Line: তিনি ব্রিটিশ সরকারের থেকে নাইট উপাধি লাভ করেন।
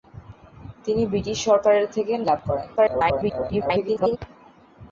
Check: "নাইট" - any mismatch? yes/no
yes